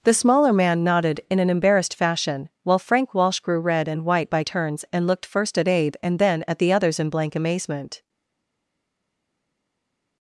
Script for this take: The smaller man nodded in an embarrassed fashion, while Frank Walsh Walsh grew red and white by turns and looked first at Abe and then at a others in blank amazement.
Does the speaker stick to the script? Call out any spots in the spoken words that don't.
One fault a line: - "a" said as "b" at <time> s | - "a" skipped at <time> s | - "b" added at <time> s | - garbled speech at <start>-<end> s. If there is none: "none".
- "Walsh" skipped at 3.4 s
- "a" said as "the" at 6.6 s